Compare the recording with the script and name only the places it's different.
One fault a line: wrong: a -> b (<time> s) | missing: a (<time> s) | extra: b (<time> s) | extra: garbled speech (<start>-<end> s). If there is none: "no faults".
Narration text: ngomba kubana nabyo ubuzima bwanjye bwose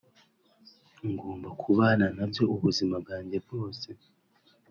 no faults